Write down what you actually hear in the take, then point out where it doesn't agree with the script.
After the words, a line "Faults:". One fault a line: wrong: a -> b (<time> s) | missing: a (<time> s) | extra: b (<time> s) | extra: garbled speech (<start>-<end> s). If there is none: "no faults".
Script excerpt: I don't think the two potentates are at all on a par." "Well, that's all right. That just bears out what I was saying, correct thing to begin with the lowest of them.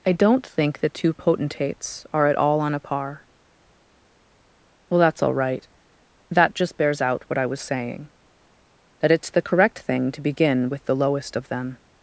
I don't think the two potentates are at all on a par." "Well, that's all right. That just bears out what I was saying, that it's the correct thing to begin with the lowest of them.
Faults:
extra: that it's the (9.0 s)